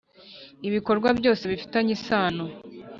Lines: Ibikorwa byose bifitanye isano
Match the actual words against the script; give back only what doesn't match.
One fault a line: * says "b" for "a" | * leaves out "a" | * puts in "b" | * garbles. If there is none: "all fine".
all fine